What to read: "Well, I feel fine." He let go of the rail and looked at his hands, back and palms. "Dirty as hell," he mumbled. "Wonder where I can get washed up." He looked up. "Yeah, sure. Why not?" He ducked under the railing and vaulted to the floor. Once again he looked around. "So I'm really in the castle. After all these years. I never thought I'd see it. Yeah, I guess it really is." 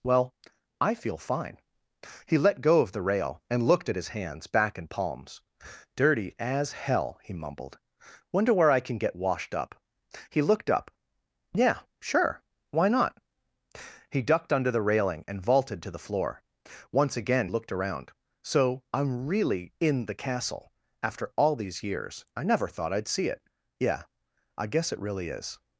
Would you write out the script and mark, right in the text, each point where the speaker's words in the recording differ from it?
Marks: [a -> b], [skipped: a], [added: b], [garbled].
"Well, I feel fine." He let go of the rail and looked at his hands, back and palms. "Dirty as hell," he mumbled. "Wonder where I can get washed up." He looked up. "Yeah, sure. Why not?" He ducked under the railing and vaulted to the floor. Once again [skipped: he] looked around. "So I'm really in the castle. After all these years. I never thought I'd see it. Yeah, I guess it really is."